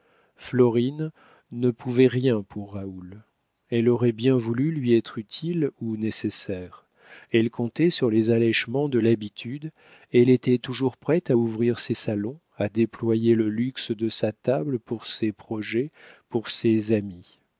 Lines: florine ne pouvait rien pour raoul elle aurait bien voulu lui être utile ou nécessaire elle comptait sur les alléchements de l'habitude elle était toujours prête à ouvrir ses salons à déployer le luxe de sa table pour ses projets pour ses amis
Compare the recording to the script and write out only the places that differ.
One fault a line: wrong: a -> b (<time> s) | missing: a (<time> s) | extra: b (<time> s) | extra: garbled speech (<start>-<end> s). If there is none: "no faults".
no faults